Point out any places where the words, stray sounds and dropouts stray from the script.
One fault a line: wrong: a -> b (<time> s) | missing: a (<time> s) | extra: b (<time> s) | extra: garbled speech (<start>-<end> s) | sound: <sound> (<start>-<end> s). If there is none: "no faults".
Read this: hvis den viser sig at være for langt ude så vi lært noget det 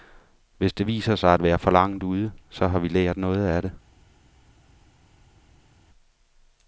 wrong: den -> det (0.7 s)
extra: har (2.7 s)
extra: af (3.5 s)